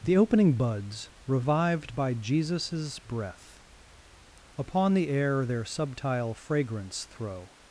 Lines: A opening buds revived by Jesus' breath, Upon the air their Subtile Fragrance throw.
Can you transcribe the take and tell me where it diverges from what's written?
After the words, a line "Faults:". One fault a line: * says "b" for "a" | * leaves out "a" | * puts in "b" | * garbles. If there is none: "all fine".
The opening buds revived by Jesus' breath, Upon the air their Subtile Fragrance throw.
Faults:
* says "The" for "A"